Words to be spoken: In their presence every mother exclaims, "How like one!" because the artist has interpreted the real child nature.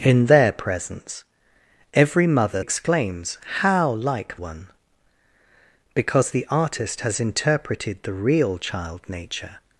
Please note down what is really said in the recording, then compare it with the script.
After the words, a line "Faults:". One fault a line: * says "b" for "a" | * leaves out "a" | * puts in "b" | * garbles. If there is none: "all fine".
In their presence every mother exclaims, "How like one!" because the artist has interpreted the real child nature.
Faults:
all fine